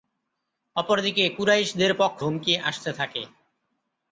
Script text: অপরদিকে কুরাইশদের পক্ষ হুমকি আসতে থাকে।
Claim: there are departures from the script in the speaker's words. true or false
false